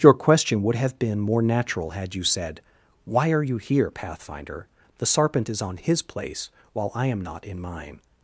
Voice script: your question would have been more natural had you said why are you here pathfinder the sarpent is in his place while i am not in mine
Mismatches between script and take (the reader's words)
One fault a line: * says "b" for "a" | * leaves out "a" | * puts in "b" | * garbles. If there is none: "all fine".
* says "on" for "in"